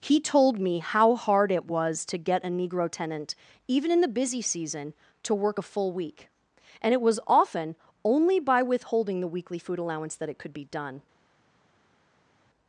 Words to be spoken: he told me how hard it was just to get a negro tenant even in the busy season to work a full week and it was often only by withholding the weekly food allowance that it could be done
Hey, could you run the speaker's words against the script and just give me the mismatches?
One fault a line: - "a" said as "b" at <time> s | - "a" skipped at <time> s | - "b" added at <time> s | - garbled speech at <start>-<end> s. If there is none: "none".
- "just" skipped at 2.0 s